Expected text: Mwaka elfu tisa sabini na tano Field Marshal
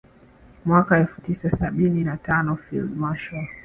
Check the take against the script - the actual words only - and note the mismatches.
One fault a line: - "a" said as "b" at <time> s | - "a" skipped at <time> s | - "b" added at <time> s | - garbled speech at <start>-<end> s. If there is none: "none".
none